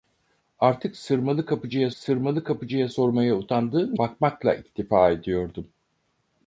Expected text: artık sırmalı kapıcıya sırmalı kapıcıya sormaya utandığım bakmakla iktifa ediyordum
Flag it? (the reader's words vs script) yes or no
no